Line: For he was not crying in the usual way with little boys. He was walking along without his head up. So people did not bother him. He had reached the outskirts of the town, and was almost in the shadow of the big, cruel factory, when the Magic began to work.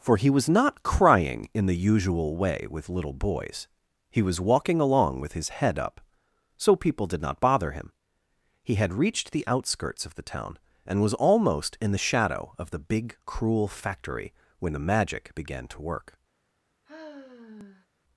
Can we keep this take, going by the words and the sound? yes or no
no